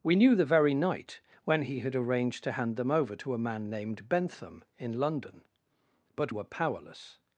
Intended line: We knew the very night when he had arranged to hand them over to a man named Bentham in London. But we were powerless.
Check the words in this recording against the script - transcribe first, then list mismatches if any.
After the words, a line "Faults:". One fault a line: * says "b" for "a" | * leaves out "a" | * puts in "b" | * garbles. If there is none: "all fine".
We knew the very night when he had arranged to hand them over to a man named Bentham in London. But were powerless.
Faults:
* leaves out "we"